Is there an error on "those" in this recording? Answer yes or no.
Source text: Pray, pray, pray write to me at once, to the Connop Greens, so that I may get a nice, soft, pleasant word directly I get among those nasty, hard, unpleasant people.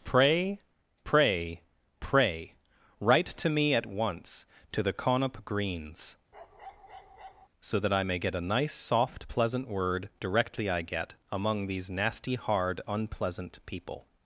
yes